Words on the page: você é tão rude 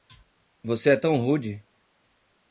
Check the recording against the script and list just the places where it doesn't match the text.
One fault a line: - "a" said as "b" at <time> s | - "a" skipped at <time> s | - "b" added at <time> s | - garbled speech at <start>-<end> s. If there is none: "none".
none